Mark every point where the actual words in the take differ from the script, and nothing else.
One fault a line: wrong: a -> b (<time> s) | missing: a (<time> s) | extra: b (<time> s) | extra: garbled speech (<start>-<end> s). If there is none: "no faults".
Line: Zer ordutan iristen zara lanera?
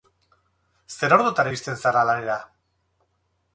no faults